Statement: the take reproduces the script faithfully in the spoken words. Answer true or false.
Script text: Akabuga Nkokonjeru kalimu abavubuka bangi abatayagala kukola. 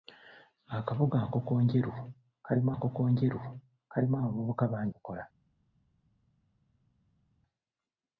false